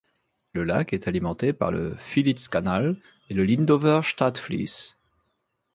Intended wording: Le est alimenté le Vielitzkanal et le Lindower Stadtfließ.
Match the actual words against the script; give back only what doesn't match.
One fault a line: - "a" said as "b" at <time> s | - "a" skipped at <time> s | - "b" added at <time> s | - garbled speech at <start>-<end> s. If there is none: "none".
- "lac" added at 0.6 s
- "par" added at 1.5 s